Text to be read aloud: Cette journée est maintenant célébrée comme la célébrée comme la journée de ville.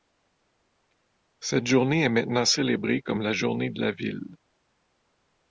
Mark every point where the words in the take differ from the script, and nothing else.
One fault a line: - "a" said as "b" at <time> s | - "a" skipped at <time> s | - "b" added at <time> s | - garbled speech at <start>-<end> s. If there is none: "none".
- "célébrée comme" said as "journée de" at 3.3 s
- "journée de" skipped at 3.9 s